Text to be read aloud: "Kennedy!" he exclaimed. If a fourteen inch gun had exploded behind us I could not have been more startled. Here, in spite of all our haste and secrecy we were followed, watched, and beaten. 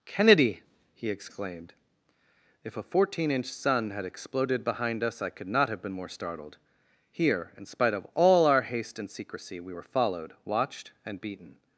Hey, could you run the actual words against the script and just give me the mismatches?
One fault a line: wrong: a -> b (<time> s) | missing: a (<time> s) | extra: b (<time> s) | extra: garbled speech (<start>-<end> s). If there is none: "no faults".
wrong: gun -> sun (3.5 s)